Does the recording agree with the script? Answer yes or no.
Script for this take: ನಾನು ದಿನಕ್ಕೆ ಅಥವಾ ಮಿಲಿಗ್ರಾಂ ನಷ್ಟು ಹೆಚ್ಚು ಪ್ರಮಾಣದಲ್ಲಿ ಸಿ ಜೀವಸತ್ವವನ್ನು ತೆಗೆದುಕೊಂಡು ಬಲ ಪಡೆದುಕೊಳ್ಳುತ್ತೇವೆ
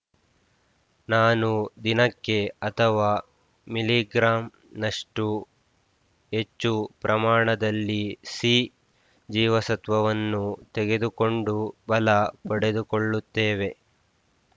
yes